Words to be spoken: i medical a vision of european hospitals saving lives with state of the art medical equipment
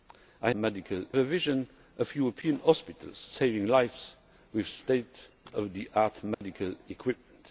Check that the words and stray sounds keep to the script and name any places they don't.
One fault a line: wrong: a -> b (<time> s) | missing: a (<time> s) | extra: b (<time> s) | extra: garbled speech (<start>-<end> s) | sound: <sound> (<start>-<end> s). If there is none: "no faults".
sound: dropout (6.3-6.4 s)